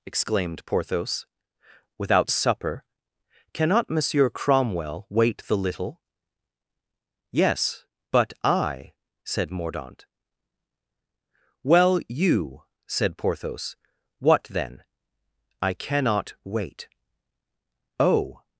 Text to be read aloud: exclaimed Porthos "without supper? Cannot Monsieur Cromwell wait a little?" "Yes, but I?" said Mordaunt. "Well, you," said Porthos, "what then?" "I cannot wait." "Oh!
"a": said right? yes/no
no